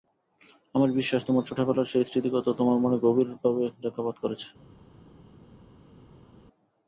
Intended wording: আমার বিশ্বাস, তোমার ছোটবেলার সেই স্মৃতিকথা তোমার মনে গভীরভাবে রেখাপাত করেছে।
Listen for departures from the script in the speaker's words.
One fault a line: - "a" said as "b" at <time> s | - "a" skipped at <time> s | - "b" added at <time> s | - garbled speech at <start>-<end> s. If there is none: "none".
none